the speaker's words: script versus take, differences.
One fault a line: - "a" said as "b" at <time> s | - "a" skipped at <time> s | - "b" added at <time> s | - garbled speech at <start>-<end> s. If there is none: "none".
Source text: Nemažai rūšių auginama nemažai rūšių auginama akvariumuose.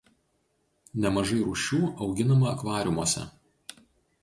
- "nemažai rūšių auginama" skipped at 2.5 s